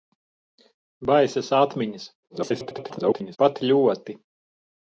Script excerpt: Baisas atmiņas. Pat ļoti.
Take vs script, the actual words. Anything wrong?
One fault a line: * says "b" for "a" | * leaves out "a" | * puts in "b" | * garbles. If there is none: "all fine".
* garbles